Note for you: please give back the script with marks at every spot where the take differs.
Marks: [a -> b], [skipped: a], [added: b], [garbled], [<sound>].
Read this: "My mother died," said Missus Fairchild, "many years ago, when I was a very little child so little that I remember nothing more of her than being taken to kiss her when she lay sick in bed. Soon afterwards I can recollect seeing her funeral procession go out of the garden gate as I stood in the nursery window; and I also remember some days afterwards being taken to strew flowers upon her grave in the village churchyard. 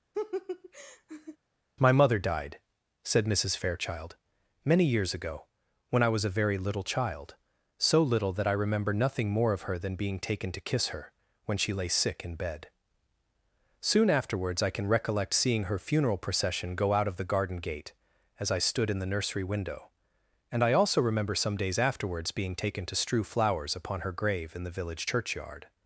[laugh] "My mother died," said Missus Fairchild, "many years ago, when I was a very little child so little that I remember nothing more of her than being taken to kiss her when she lay sick in bed. Soon afterwards I can recollect seeing her funeral procession go out of the garden gate as I stood in the nursery window; and I also remember some days afterwards being taken to strew flowers upon her grave in the village churchyard.